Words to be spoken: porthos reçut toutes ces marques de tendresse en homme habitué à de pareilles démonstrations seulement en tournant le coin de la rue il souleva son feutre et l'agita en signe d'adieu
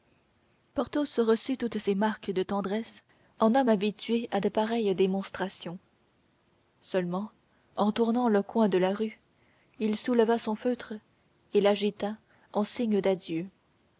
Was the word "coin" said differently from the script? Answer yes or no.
no